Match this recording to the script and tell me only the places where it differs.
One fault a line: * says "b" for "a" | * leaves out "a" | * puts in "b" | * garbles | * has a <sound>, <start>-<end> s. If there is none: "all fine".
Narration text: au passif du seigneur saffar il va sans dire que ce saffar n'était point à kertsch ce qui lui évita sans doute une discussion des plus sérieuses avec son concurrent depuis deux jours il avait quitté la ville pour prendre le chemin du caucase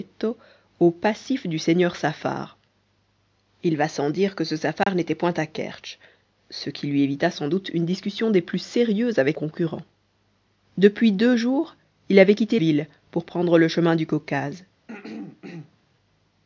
* has a dropout, 4.8-4.9 s
* leaves out "son"
* leaves out "la"
* has a throat clearing, 14.9-15.8 s